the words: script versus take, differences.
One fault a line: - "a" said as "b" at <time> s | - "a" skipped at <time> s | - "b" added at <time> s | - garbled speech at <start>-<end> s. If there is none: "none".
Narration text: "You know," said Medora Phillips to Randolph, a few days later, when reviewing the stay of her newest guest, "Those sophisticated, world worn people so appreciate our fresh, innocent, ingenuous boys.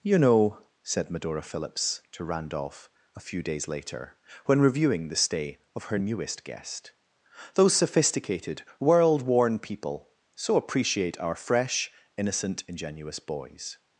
none